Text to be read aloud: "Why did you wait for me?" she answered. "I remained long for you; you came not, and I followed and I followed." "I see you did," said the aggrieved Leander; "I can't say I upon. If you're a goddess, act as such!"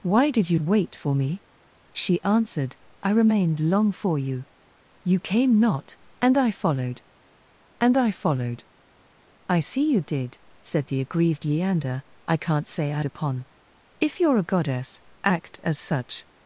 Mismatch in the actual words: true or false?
false